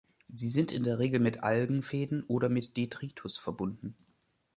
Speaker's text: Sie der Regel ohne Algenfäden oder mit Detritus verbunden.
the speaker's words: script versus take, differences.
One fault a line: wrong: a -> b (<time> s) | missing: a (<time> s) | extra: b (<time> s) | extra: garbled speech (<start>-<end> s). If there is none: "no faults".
extra: sind in (0.5 s)
wrong: ohne -> mit (1.2 s)